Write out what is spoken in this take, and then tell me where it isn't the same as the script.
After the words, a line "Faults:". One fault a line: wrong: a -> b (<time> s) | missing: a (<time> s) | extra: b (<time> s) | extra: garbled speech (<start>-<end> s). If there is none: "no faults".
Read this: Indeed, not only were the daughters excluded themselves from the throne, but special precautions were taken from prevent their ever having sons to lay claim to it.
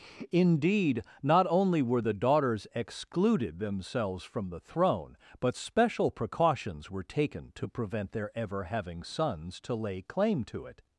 Indeed, not only were the daughters excluded themselves from the throne, but special precautions were taken to prevent their ever having sons to lay claim to it.
Faults:
wrong: from -> to (7.6 s)